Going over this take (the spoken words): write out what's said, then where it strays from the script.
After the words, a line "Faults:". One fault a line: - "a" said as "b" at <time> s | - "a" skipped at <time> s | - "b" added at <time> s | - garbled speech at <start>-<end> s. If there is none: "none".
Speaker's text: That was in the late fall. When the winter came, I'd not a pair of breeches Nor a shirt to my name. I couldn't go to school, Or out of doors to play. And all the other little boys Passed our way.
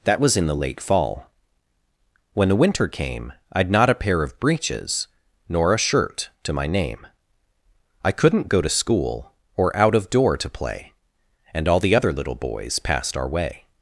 That was in the late fall. When the winter came, I'd not a pair of breeches Nor a shirt to my name. I couldn't go to school, Or out of door to play. And all the other little boys Passed our way.
Faults:
- "doors" said as "door" at 10.1 s